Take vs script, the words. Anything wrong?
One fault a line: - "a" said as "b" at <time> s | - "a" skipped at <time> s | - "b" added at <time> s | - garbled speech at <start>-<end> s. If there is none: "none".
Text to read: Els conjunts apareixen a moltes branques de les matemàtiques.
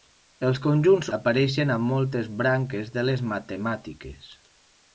none